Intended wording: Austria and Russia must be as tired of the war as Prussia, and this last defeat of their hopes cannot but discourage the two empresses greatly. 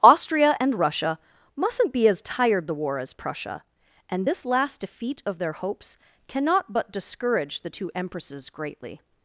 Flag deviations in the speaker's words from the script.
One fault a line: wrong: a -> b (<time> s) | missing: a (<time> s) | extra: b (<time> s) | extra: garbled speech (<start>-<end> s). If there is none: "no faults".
wrong: must -> mustn't (1.6 s)
missing: of (2.6 s)